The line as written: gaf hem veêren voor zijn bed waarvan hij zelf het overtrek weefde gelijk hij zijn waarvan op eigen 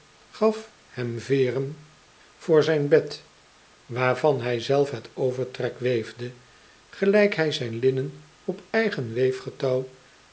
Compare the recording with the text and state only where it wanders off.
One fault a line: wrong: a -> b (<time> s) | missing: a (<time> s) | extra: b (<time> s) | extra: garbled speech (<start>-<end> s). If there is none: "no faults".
wrong: waarvan -> linnen (7.8 s)